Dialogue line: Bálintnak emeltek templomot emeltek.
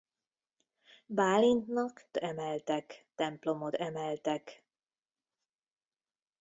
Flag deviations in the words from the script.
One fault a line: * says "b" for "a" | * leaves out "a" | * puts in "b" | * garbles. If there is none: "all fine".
all fine